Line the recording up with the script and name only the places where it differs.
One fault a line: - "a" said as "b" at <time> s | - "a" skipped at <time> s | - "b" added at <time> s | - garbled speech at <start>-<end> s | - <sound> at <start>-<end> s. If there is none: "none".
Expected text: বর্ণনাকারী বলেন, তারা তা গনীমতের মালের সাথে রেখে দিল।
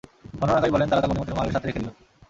none